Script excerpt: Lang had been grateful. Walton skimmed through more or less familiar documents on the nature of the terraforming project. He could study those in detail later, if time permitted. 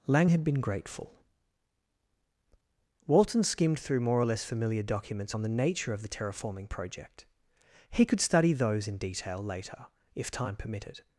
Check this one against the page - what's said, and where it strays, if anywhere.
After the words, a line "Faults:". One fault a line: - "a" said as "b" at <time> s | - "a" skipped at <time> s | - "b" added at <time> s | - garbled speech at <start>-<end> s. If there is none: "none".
Lang had been grateful. Walton skimmed through more or less familiar documents on the nature of the terraforming project. He could study those in detail later, if time permitted.
Faults:
none